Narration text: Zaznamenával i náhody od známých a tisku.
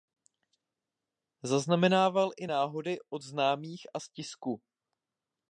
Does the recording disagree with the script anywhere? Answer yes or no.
yes